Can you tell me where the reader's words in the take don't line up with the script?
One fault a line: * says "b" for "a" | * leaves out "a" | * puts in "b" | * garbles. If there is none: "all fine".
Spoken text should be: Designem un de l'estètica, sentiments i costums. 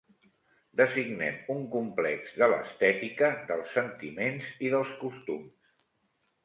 * puts in "complex"
* puts in "dels"
* puts in "dels"